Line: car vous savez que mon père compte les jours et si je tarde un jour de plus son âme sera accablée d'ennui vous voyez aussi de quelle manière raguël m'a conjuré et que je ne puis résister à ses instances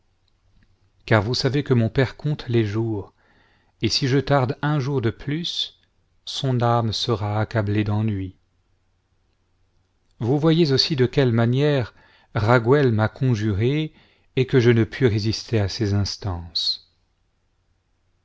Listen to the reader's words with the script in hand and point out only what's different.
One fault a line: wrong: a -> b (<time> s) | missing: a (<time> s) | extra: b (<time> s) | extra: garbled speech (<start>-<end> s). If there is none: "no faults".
no faults